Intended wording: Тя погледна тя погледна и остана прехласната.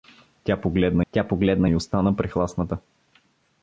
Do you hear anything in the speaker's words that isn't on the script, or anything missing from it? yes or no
no